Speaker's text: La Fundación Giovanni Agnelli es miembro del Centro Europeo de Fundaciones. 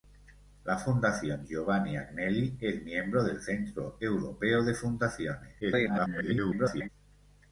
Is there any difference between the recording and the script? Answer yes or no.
yes